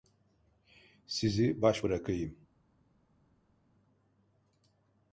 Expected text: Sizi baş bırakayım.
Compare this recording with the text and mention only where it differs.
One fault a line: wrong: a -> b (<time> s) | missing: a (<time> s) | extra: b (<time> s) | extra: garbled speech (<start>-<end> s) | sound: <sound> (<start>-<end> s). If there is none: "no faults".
no faults